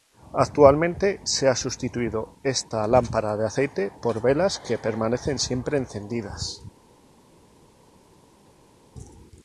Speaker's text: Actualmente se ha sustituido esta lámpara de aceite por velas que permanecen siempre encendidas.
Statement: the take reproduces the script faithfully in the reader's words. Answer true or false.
true